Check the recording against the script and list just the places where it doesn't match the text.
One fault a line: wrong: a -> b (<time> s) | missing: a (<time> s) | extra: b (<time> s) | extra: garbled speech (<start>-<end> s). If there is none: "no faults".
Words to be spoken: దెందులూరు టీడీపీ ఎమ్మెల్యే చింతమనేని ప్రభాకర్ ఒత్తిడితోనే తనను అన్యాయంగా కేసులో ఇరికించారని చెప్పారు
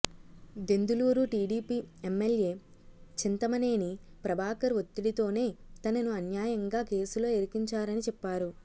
no faults